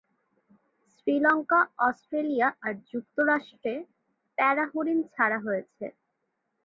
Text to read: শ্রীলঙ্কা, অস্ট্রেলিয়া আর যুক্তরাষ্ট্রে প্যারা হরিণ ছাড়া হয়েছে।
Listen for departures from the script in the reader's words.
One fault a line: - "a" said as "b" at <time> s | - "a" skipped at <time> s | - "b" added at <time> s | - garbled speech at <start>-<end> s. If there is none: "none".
none